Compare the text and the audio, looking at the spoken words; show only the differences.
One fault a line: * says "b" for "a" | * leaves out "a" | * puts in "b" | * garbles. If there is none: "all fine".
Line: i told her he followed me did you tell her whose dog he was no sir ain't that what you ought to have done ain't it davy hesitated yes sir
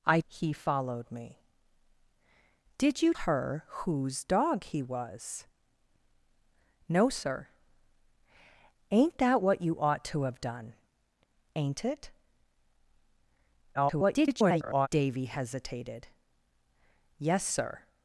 * leaves out "told her"
* leaves out "tell"
* garbles